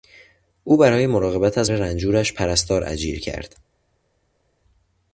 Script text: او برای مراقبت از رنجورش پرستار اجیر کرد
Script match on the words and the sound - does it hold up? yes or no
yes